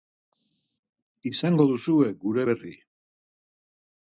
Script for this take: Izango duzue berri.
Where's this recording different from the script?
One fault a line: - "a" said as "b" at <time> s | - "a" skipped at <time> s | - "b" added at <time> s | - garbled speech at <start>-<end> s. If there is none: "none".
- "gure" added at 2.3 s